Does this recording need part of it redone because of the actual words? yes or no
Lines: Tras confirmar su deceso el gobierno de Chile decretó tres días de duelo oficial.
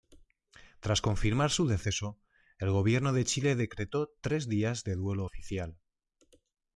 no